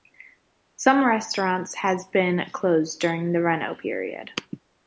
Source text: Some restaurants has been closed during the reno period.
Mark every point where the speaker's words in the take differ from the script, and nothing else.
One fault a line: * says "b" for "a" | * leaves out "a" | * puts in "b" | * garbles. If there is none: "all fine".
all fine